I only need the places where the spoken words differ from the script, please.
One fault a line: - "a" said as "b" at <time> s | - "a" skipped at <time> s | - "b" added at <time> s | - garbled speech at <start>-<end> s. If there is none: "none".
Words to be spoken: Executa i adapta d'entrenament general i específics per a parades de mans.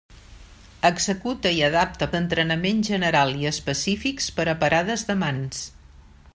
none